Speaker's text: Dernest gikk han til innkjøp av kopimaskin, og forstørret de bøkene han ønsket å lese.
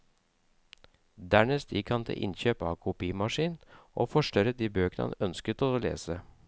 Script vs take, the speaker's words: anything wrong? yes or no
no